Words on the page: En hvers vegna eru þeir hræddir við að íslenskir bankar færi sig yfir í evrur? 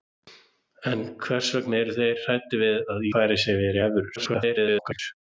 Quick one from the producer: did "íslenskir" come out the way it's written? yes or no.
no